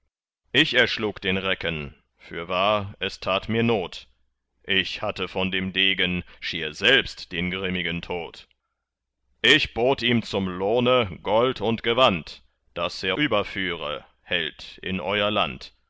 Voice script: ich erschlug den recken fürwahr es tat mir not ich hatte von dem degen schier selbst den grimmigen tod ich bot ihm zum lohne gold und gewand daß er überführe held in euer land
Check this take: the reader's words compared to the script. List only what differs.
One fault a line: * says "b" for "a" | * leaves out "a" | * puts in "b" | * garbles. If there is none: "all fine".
all fine